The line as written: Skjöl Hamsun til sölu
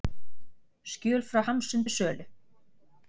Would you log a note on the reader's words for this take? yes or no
yes